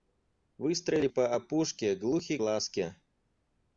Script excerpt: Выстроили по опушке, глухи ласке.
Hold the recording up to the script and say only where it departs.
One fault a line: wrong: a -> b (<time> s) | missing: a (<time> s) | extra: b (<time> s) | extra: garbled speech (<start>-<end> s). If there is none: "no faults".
no faults